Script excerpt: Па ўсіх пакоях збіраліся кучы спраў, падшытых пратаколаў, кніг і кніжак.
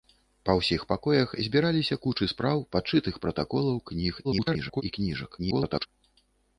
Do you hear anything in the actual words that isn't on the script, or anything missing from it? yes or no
yes